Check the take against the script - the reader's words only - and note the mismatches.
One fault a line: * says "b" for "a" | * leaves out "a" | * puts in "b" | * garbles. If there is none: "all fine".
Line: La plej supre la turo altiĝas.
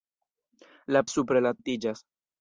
* leaves out "plej"
* leaves out "turo"